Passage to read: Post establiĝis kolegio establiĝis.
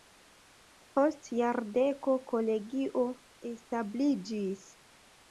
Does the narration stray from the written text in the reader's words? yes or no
yes